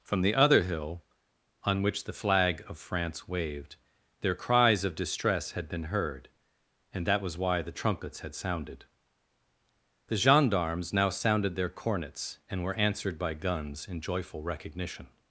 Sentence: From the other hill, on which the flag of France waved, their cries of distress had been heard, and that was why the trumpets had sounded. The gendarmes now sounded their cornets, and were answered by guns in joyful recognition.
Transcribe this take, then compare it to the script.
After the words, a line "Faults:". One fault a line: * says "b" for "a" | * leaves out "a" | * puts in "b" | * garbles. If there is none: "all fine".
From the other hill, on which the flag of France waved, their cries of distress had been heard, and that was why the trumpets had sounded. The gendarmes now sounded their cornets, and were answered by guns in joyful recognition.
Faults:
all fine